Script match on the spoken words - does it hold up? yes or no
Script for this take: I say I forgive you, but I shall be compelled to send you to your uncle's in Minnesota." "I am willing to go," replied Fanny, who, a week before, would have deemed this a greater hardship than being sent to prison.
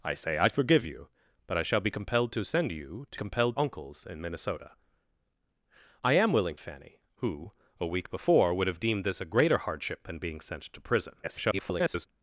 no